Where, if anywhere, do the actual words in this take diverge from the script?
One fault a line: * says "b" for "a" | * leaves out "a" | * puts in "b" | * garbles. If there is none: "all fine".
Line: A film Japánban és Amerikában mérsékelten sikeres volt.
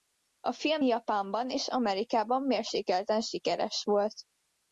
all fine